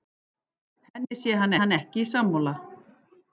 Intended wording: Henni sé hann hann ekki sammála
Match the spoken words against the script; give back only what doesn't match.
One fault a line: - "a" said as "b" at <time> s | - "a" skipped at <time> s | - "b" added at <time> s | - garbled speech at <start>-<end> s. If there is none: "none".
none